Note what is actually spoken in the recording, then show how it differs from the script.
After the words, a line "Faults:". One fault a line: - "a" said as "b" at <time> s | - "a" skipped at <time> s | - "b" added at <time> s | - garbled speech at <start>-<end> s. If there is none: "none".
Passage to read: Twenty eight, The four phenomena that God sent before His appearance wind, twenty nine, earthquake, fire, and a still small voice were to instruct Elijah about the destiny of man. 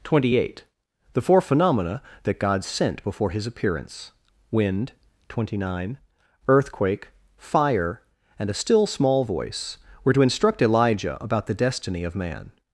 Twenty eight, The four phenomena that God sent before His appearance wind, twenty nine, earthquake, fire, and a still small voice were to instruct Elijah about the destiny of man.
Faults:
none